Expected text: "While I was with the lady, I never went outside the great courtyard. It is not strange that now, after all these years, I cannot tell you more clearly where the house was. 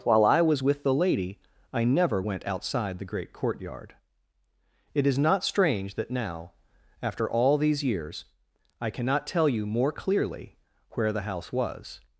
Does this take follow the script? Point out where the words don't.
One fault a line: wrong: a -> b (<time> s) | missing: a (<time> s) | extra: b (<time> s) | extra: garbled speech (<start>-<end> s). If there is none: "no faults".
no faults